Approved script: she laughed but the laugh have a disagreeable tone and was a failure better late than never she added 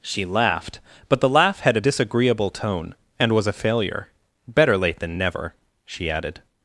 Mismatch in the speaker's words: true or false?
true